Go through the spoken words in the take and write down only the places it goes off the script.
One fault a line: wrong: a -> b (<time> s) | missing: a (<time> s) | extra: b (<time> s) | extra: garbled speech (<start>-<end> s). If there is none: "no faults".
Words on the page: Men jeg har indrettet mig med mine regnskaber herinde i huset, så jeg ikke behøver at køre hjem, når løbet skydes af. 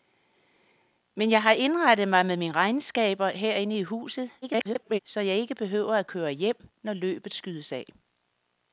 extra: garbled speech (4.4-5.0 s)